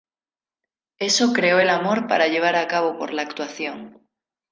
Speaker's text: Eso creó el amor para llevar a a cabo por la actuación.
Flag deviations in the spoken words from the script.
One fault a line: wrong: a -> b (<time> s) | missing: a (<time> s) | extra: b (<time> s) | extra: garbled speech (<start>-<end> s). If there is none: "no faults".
missing: a (2.7 s)